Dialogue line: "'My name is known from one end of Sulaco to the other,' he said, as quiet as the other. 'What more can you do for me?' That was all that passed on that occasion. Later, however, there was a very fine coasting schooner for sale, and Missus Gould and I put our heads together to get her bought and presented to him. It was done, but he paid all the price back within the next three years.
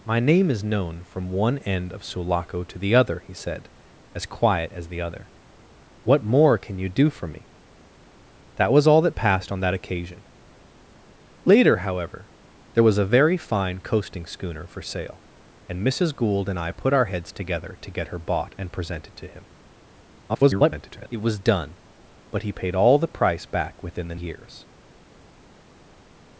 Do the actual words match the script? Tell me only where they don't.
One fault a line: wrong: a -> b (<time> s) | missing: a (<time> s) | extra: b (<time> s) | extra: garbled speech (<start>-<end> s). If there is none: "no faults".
extra: garbled speech (20.3-21.1 s)
missing: next three (24.2 s)